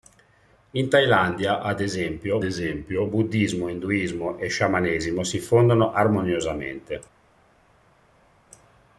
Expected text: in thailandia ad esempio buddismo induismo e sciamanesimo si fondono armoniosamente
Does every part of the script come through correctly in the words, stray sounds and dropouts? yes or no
no